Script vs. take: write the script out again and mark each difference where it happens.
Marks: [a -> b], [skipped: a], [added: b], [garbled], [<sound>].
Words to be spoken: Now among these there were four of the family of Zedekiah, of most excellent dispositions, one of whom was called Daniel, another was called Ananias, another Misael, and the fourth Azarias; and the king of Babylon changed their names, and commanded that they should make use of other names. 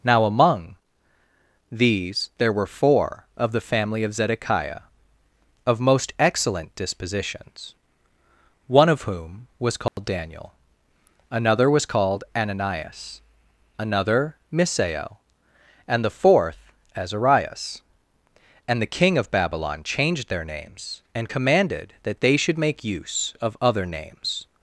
Now among these there were four of the family of Zedekiah, of most excellent dispositions, one of whom was called [dropout] Daniel, another was called Ananias, another Misael, and the fourth Azarias; and the king of Babylon changed their names, and commanded that they should make use of other names.